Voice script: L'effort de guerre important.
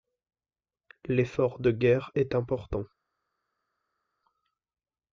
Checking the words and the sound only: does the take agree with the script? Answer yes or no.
no